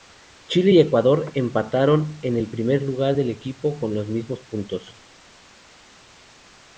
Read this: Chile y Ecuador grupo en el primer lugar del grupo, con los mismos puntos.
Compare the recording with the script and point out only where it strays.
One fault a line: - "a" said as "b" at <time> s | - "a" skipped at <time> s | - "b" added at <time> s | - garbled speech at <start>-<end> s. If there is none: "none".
- "grupo" said as "empataron" at 1.3 s